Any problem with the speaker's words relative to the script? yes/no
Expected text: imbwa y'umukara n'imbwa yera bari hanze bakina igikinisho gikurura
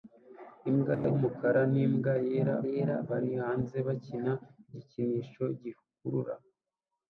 yes